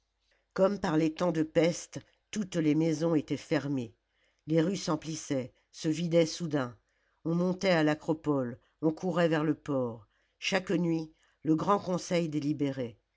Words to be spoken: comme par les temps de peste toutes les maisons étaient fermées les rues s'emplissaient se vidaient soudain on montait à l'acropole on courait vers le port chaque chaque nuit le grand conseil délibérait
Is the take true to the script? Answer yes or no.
no